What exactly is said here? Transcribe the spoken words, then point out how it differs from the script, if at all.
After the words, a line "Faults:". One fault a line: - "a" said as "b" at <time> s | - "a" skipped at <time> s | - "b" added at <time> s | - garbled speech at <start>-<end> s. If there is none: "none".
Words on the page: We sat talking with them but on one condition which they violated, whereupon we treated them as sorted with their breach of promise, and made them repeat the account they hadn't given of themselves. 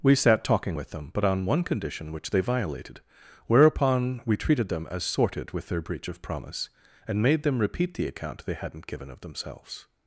We sat talking with them but on one condition which they violated, whereupon we treated them as sorted with their breach of promise, and made them repeat the account they hadn't given of themselves.
Faults:
none